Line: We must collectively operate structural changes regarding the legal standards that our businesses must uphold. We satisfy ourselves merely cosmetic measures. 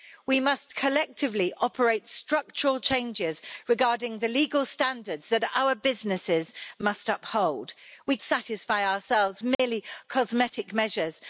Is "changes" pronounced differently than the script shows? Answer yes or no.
no